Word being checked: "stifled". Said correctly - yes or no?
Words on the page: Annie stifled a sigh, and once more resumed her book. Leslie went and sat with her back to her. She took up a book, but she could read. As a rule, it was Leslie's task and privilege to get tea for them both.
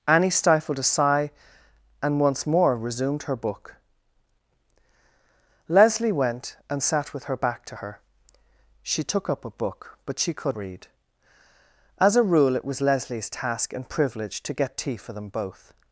yes